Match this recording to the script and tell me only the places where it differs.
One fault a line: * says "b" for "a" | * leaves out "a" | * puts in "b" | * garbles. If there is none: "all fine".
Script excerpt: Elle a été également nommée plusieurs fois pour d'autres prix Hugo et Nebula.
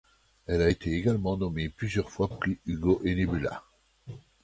* leaves out "pour d'autres"